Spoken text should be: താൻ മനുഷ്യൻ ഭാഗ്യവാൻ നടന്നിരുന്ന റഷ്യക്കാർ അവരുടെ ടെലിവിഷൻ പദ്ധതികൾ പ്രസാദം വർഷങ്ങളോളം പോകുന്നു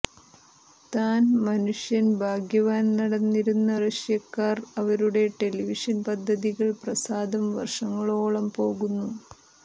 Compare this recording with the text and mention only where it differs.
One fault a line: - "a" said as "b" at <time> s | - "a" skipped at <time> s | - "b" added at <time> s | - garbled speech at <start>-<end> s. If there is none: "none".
none